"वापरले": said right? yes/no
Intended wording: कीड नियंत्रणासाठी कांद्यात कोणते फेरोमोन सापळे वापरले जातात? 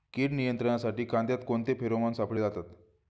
no